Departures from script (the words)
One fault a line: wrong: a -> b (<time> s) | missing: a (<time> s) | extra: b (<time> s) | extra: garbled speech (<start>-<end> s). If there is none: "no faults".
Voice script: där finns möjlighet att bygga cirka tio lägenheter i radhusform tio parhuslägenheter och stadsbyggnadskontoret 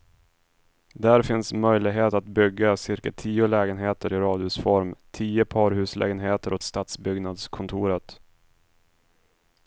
no faults